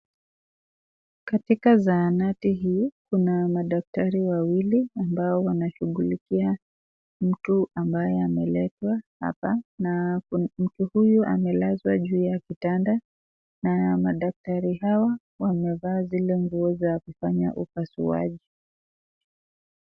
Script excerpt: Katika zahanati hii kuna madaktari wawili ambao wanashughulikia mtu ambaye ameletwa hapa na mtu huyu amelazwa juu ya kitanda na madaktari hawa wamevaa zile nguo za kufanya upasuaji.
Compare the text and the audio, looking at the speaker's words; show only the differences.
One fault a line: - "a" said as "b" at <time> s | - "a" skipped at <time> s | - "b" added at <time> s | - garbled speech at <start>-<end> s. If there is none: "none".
none